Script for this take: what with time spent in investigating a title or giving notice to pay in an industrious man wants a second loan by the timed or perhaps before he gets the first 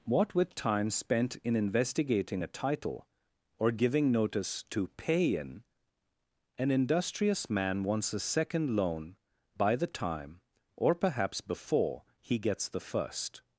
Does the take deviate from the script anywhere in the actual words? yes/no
yes